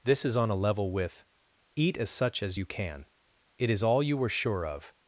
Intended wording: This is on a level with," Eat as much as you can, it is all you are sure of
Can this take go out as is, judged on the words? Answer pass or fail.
fail